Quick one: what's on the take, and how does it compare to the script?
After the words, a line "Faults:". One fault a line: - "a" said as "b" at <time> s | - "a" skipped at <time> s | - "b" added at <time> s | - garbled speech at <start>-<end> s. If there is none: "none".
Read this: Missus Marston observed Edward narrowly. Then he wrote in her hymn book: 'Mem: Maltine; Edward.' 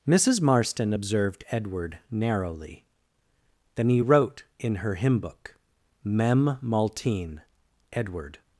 Missus Marston observed Edward narrowly. Then he wrote in her hymn book: 'Mem: Maltine; Edward.'
Faults:
none